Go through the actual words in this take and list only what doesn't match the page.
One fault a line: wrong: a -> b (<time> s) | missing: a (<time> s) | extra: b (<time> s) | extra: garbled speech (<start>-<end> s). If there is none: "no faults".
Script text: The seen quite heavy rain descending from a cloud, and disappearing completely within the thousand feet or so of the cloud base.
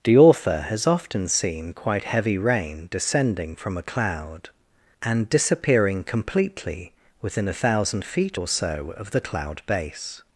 extra: author has often (0.2 s)
wrong: the -> a (7.5 s)